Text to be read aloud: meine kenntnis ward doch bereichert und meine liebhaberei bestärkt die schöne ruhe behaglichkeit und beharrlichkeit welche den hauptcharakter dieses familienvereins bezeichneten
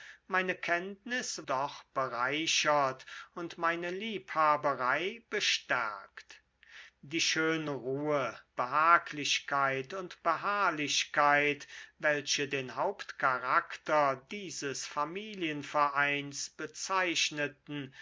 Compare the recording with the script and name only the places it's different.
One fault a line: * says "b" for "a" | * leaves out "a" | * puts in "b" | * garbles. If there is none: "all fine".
* leaves out "ward"